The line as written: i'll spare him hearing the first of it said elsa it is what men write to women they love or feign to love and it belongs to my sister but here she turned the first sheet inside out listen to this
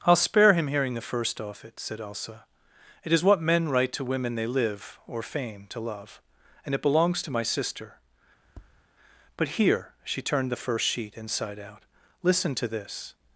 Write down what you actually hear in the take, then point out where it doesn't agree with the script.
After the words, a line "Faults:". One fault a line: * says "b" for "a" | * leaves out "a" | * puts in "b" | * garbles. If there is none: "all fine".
i'll spare him hearing the first off it said elsa it is what men write to women they live or feign to love and it belongs to my sister but here she turned the first sheet inside out listen to this
Faults:
* says "off" for "of"
* says "live" for "love"